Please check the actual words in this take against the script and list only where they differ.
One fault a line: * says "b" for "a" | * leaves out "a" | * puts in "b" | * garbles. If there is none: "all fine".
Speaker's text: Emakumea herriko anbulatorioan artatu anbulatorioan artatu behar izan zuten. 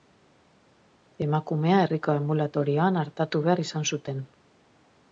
* leaves out "anbulatorioan artatu"